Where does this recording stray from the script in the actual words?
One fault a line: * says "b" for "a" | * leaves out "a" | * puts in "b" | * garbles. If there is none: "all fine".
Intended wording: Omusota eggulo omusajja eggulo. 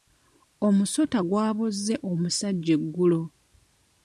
* says "gwabozze" for "eggulo"